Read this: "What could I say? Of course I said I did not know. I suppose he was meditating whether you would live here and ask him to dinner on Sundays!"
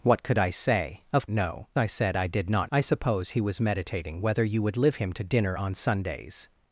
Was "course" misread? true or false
true